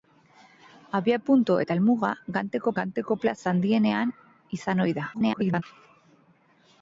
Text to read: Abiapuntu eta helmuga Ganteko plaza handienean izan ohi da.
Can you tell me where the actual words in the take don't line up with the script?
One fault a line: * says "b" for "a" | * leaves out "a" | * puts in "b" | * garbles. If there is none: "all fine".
* puts in "Ganteko"
* garbles